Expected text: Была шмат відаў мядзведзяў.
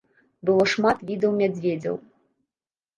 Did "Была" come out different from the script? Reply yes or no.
yes